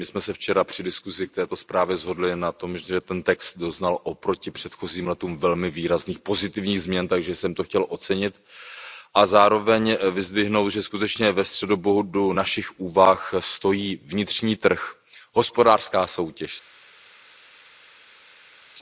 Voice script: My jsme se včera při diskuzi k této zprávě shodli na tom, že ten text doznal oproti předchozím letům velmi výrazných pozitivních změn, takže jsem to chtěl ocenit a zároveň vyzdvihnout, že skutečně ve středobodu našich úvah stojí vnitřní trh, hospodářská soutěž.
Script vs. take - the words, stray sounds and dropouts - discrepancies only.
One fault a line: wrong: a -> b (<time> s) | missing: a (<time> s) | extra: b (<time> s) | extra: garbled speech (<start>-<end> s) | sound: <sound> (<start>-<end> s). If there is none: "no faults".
no faults